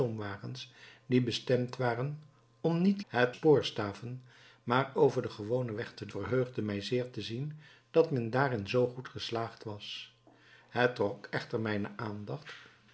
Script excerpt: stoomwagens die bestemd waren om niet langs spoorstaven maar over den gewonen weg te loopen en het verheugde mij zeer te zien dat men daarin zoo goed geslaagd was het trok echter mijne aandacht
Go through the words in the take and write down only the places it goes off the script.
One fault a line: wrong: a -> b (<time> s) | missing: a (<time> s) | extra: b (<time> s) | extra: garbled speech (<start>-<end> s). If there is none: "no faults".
wrong: langs -> het (3.1 s)
missing: loopen en het (6.1 s)